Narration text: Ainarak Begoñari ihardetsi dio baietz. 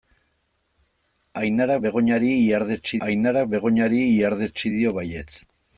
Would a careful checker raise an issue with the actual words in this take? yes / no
yes